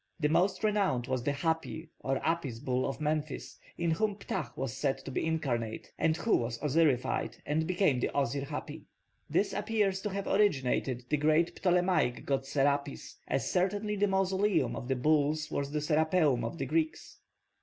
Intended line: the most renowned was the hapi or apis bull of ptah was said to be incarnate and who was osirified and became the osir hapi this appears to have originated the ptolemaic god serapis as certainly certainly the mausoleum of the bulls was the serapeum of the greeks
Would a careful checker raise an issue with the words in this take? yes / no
yes